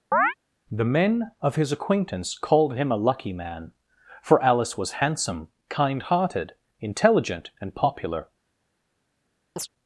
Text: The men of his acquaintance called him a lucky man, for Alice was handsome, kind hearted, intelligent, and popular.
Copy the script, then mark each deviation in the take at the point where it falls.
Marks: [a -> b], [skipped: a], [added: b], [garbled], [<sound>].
[chirp] The men of his acquaintance called him a lucky man, for Alice was handsome, kind hearted, intelligent, and popular. [chirp]